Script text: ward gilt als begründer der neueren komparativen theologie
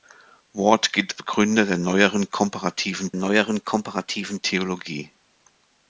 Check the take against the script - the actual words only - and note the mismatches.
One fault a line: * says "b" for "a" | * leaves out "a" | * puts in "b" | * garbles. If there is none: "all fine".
* leaves out "als"
* puts in "neueren komparativen"